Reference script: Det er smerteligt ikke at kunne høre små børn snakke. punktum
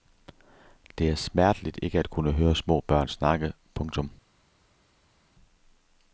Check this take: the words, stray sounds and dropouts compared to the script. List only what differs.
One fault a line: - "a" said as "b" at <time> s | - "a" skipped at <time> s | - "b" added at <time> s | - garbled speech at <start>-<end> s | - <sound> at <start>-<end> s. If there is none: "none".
none